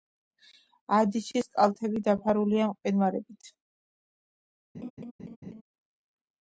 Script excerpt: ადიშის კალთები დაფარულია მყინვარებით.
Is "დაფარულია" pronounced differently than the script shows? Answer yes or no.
no